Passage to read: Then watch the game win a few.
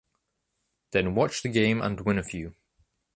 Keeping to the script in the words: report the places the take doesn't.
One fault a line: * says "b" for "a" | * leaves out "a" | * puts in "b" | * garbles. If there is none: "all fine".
* puts in "and"